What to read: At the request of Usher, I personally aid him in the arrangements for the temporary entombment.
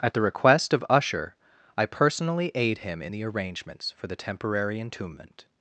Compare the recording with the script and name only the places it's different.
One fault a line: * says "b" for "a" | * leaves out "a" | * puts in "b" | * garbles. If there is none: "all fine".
all fine